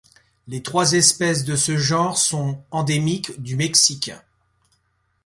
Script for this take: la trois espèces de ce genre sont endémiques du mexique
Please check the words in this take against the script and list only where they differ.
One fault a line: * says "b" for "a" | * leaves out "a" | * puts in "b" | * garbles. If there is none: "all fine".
* says "les" for "la"